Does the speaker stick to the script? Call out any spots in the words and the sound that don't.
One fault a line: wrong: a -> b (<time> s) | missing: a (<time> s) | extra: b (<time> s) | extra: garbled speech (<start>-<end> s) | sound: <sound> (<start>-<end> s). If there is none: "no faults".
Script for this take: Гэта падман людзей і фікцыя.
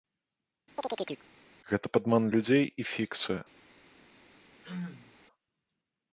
sound: chirp (0.8-1.3 s)
sound: throat clearing (4.6-5.1 s)